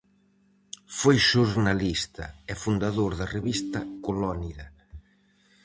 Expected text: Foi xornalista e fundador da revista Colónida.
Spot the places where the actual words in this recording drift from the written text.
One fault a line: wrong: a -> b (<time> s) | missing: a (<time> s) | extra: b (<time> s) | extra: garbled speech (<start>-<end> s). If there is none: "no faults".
no faults